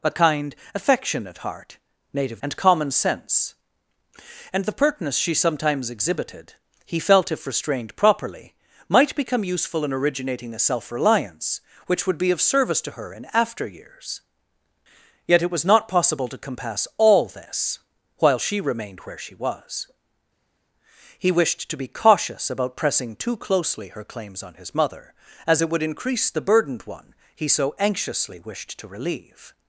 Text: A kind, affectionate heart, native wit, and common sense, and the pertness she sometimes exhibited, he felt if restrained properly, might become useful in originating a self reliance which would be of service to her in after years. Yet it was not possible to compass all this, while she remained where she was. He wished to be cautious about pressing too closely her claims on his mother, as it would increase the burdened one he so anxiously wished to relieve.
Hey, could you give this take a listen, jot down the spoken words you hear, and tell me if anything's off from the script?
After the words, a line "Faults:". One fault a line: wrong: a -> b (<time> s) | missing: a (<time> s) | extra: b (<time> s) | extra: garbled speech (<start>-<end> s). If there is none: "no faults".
A kind, affectionate heart, native and common sense, and the pertness she sometimes exhibited, he felt if restrained properly, might become useful in originating a self reliance which would be of service to her in after years. Yet it was not possible to compass all this, while she remained where she was. He wished to be cautious about pressing too closely her claims on his mother, as it would increase the burdened one he so anxiously wished to relieve.
Faults:
missing: wit (2.4 s)